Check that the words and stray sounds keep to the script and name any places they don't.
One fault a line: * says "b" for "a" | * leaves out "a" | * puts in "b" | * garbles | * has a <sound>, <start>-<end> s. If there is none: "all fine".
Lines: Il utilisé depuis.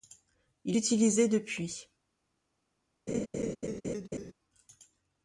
* has a laugh, 3.1-4.3 s